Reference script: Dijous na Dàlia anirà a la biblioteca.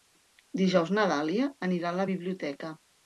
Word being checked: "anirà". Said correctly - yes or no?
yes